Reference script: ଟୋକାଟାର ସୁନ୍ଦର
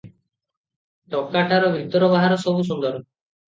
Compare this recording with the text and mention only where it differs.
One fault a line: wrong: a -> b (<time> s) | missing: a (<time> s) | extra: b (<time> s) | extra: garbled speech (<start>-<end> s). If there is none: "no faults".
extra: ଭିତର ବାହାର ସବୁ (1.8 s)